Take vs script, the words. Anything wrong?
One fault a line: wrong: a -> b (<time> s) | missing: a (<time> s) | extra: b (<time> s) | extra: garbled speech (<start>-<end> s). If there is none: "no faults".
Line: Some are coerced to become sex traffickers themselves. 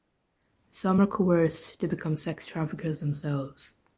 no faults